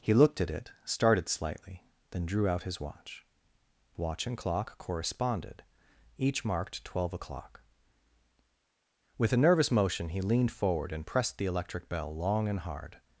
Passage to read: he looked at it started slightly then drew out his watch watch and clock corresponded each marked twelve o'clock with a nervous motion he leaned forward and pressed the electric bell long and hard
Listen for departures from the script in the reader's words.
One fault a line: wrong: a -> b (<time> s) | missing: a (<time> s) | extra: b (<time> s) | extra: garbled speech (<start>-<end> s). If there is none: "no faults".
no faults